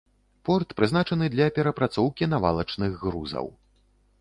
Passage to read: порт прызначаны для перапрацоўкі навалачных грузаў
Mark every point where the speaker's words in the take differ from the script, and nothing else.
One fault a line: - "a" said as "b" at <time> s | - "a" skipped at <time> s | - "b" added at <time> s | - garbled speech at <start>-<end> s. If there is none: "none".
none